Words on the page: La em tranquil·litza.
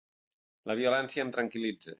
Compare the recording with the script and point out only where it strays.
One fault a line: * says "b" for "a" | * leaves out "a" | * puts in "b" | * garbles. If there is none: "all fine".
* puts in "violència"